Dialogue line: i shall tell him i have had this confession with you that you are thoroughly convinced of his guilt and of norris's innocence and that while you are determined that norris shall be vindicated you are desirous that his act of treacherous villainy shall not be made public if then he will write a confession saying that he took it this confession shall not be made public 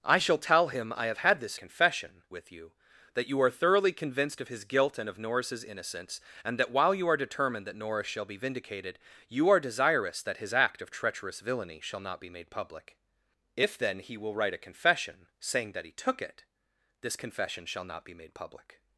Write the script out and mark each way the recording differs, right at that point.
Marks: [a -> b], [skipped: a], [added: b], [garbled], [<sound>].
i shall tell him i have had this confession with you that you are thoroughly convinced of his guilt and of norris's innocence and that while you are determined that norris shall be vindicated you are desirous that his act of treacherous villainy shall not be made public if then he will write a confession saying that he took it this confession shall not be made public